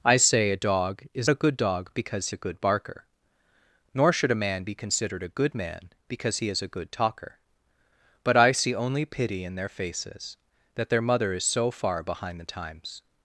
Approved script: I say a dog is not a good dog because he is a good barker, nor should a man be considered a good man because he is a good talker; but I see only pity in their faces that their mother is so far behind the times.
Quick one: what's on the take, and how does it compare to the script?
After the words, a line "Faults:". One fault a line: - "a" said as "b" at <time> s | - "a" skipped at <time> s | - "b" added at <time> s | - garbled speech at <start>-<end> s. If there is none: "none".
I say a dog is a good dog because a good barker, nor should a man be considered a good man because he is a good talker; but I see only pity in their faces that their mother is so far behind the times.
Faults:
- "not" skipped at 1.3 s
- "he is" skipped at 2.3 s